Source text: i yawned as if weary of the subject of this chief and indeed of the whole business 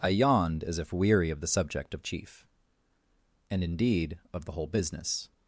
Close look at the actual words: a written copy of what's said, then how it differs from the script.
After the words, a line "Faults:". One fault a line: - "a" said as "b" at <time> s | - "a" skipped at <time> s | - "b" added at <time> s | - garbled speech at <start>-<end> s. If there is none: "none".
i yawned as if weary of the subject of chief and indeed of the whole business
Faults:
- "this" skipped at 2.0 s